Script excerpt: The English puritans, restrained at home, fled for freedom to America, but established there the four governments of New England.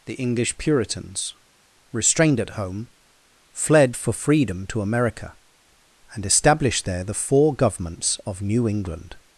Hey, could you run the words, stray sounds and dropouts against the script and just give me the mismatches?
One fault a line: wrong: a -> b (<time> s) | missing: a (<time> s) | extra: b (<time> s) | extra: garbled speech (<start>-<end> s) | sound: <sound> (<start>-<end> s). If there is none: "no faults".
wrong: but -> and (6.1 s)